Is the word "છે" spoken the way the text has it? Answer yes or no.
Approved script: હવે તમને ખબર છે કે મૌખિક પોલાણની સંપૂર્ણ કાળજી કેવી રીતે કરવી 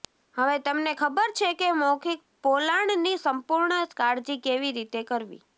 yes